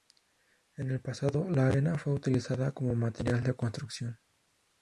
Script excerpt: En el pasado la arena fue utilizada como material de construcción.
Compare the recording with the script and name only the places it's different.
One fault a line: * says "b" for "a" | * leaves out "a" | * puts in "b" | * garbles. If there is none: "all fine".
all fine